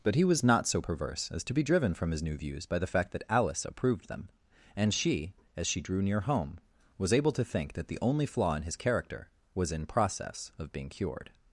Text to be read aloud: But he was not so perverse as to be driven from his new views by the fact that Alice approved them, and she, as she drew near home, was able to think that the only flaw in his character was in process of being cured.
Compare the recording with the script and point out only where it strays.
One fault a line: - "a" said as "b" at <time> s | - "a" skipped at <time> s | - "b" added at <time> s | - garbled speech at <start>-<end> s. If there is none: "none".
none